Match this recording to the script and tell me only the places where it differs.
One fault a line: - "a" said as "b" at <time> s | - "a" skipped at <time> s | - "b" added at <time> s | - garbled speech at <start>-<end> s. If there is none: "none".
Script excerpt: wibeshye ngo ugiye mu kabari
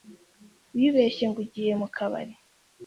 none